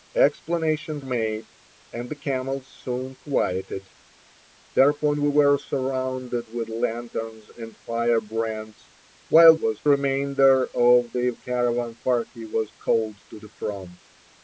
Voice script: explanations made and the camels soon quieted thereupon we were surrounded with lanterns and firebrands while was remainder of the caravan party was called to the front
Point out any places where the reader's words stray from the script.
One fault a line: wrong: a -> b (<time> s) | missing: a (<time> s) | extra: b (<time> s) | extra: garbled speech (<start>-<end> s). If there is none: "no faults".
no faults